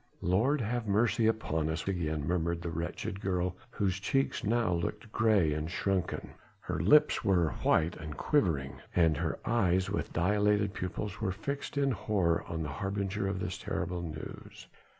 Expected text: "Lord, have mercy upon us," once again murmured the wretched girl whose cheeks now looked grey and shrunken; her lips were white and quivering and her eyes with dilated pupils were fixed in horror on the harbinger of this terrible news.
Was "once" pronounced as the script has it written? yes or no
no